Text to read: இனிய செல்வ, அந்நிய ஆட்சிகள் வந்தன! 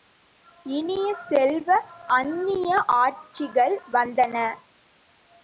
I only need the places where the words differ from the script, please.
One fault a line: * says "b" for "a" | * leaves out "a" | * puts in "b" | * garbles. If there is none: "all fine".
all fine